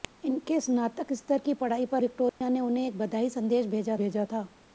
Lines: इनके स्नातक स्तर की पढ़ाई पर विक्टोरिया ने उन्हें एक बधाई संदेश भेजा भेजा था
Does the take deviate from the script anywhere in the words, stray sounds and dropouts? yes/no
yes